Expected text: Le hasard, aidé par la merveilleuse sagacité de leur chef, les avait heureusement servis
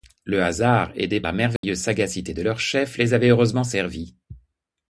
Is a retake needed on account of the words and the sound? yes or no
yes